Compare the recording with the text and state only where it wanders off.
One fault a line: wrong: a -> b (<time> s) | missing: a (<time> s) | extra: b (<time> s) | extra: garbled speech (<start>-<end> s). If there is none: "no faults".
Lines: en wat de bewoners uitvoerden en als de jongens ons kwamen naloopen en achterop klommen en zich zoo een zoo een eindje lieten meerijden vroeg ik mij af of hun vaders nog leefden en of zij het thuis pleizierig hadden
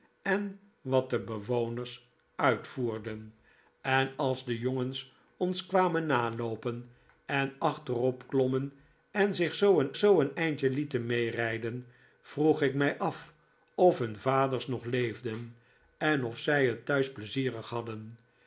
no faults